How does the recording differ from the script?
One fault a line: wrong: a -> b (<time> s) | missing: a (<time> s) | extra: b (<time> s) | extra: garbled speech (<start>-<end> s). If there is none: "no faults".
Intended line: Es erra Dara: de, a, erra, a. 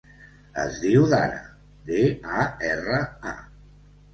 wrong: erra -> diu (0.8 s)